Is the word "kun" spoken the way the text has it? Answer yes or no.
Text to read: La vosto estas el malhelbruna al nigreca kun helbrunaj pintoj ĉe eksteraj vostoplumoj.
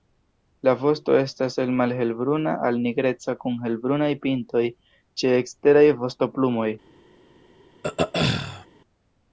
yes